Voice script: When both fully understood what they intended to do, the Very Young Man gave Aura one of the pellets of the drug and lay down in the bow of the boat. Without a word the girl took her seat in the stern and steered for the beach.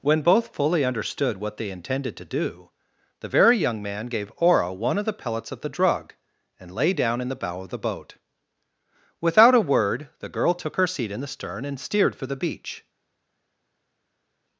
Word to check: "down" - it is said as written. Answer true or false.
true